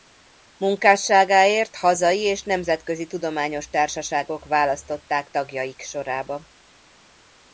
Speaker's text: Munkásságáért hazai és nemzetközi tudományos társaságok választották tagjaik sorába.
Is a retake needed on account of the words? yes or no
no